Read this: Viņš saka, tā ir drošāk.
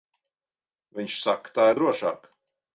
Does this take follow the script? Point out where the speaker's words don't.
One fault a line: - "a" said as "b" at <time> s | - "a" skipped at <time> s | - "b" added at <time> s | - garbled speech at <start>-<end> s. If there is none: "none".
none